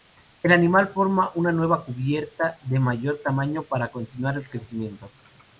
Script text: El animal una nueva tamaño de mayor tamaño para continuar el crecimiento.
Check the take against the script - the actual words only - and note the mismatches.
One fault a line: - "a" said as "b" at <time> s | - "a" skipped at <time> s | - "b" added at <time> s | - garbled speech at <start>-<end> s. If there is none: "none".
- "forma" added at 0.9 s
- "tamaño" said as "cubierta" at 1.9 s